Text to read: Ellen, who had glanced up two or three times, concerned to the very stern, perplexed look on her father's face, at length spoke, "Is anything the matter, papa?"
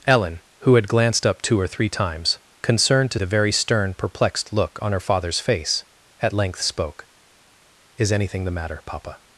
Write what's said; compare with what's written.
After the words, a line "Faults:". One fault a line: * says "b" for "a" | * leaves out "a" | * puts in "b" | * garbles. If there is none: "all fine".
Ellen, who had glanced up two or three times, concerned to the very stern, perplexed look on her father's face, at length spoke, "Is anything the matter, papa?"
Faults:
all fine